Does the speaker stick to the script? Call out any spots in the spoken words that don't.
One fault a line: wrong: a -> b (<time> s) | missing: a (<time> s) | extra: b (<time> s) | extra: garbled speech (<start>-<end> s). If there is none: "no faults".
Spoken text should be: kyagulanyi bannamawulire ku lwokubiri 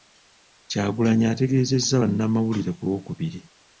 extra: ategeezezza (1.3 s)